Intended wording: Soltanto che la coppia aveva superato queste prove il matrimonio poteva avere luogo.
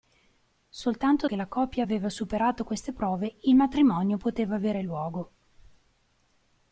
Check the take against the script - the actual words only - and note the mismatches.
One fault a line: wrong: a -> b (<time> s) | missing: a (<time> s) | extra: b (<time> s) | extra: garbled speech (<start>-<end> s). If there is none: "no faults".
no faults